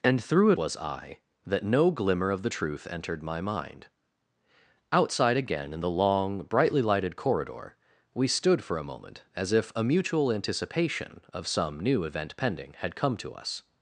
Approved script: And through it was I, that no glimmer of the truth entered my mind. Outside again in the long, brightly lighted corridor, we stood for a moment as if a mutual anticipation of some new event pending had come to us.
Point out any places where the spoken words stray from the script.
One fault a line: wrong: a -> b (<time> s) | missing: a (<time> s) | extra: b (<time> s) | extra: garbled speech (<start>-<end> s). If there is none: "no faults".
no faults